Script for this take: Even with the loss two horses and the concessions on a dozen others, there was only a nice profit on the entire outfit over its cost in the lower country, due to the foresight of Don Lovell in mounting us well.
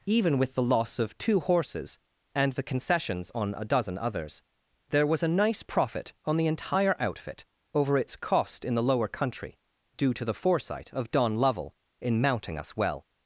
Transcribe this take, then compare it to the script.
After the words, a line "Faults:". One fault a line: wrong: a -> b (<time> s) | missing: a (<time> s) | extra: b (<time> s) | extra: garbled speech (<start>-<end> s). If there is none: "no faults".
Even with the loss of two horses and the concessions on a dozen others, there was a nice profit on the entire outfit over its cost in the lower country, due to the foresight of Don Lovell in mounting us well.
Faults:
extra: of (1.0 s)
missing: only (5.2 s)